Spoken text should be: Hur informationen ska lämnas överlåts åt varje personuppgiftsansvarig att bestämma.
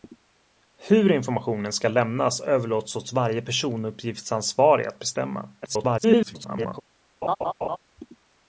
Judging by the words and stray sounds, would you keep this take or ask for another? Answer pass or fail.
fail